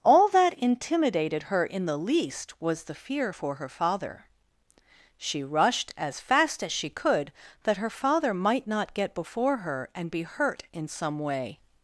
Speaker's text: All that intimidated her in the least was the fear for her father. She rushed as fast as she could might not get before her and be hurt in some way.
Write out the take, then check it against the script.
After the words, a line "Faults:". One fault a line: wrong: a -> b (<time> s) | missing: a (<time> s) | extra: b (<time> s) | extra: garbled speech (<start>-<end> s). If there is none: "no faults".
All that intimidated her in the least was the fear for her father. She rushed as fast as she could that her father might not get before her and be hurt in some way.
Faults:
extra: that her father (7.6 s)